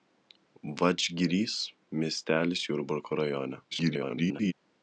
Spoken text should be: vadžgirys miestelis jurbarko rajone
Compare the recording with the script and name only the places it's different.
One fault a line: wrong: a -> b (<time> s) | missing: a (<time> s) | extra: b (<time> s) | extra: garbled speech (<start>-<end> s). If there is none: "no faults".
extra: garbled speech (3.7-4.5 s)